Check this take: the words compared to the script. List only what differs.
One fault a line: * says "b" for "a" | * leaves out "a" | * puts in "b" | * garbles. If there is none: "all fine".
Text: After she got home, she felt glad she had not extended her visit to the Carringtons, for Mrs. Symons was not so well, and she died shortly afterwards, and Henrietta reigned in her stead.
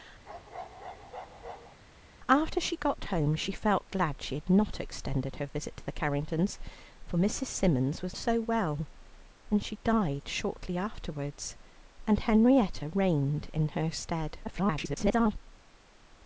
* leaves out "not"
* garbles